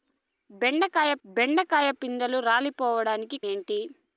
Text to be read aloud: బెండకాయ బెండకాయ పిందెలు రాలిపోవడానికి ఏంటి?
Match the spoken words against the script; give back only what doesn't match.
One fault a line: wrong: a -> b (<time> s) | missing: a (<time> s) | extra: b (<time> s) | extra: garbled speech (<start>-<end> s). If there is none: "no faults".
no faults